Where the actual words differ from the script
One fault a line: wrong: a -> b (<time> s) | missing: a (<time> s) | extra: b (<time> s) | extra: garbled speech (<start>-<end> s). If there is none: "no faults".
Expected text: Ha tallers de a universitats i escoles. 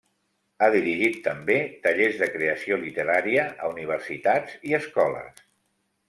extra: dirigit també (0.8 s)
extra: creació literària (2.4 s)